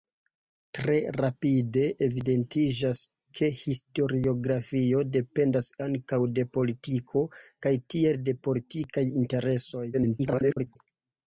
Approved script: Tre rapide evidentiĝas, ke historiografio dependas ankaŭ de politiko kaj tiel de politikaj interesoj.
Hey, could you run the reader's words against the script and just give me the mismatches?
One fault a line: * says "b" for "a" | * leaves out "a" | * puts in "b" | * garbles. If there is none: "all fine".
* garbles